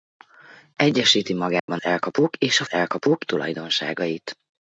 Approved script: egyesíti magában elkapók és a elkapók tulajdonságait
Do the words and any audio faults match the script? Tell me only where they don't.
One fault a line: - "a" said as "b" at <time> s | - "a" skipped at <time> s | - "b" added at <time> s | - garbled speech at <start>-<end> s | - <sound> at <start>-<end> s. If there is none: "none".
- dropout at 1.6-1.7 s